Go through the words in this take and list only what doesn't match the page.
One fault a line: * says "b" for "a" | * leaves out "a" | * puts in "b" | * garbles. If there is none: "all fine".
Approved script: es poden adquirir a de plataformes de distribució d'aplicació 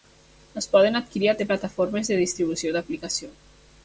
all fine